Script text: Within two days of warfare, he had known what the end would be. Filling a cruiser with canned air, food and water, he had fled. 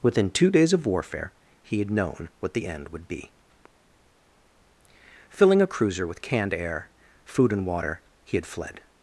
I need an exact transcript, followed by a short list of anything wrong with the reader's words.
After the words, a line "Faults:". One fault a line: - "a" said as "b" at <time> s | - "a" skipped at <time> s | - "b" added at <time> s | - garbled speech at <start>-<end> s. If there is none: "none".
Within two days of warfare, he had known what the end would be. Filling a cruiser with canned air, food and water, he had fled.
Faults:
none